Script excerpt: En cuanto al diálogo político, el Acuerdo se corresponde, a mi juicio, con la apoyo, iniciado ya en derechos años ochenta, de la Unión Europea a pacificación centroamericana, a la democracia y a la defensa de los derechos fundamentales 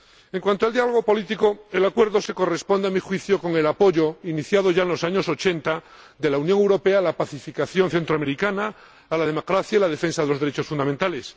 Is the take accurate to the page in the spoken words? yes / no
no